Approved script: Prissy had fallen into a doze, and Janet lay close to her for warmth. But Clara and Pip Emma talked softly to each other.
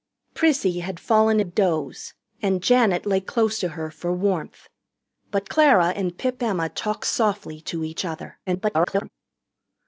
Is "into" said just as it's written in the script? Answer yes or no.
no